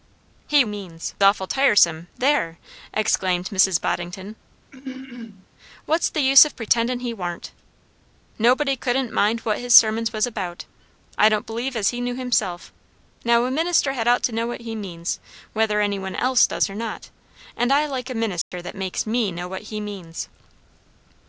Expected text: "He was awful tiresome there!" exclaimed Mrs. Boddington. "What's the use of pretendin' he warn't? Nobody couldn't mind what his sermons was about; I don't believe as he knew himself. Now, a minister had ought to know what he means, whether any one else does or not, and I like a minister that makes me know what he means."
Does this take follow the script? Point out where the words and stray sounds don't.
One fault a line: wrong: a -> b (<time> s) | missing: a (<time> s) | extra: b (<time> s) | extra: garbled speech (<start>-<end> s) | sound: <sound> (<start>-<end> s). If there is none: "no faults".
wrong: was -> means (0.7 s)
sound: throat clearing (4.7-5.5 s)
sound: dropout (18.4-18.5 s)